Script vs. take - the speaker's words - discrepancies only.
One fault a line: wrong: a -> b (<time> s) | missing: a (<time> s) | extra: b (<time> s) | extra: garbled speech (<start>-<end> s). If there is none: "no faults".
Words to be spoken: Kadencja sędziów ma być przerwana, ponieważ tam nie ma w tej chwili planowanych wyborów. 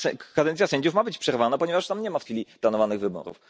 missing: tej (2.2 s)